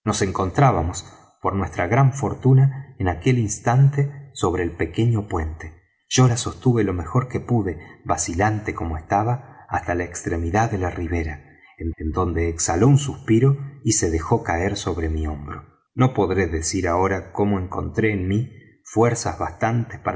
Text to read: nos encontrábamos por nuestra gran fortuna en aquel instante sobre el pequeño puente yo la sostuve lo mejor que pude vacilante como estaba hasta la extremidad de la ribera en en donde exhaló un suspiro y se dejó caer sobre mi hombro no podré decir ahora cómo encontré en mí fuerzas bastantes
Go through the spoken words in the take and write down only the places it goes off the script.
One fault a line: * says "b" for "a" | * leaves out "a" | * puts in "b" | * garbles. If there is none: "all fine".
all fine